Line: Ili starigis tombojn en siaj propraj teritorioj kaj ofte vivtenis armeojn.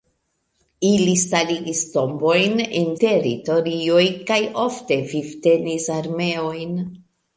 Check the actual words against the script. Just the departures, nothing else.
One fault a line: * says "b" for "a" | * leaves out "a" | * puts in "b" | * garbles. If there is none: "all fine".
* leaves out "siaj propraj"